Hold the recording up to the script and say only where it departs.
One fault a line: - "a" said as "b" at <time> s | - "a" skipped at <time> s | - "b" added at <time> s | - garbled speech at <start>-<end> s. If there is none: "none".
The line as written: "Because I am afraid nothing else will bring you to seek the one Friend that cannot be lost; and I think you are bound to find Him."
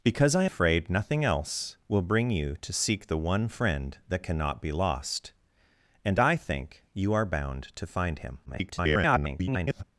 - "am" skipped at 0.5 s
- garbled speech at 8.5-9.8 s